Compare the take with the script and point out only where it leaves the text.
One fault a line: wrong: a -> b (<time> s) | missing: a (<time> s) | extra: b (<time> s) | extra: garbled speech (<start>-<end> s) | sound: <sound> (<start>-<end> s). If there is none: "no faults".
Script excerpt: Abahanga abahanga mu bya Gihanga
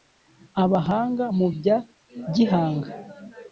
missing: abahanga (1.2 s)